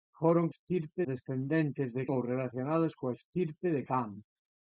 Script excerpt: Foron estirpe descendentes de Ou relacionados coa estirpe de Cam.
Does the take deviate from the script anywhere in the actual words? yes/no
no